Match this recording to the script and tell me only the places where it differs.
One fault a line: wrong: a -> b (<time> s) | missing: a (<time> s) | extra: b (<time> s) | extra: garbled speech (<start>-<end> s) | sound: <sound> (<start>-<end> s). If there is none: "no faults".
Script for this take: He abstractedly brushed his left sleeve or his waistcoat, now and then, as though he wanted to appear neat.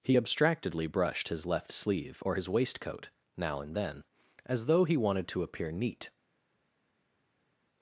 no faults